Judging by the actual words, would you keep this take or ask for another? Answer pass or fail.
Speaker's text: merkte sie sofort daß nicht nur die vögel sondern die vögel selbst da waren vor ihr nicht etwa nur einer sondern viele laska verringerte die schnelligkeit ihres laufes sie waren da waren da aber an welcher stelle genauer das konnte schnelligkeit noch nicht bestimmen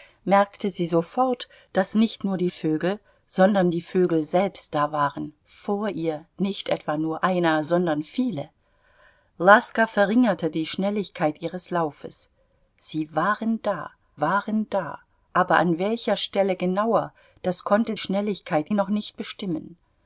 pass